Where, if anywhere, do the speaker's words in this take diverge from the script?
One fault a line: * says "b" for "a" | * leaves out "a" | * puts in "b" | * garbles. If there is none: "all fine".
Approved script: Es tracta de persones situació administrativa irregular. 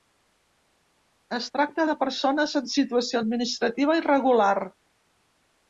* puts in "en"